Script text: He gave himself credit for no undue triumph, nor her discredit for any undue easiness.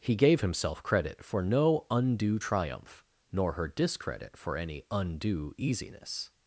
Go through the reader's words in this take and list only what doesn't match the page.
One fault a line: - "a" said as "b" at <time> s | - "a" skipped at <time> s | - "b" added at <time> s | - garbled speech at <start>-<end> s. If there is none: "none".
none